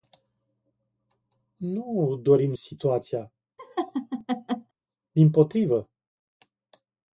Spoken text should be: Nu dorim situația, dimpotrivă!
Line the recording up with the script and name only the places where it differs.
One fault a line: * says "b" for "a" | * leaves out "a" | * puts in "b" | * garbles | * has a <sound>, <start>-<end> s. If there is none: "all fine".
* has a laugh, 3.6-4.7 s